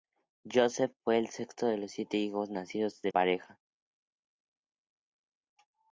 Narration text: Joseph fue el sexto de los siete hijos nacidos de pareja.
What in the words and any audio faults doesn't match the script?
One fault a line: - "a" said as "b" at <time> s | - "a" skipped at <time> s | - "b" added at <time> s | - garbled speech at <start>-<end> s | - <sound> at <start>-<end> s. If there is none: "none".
none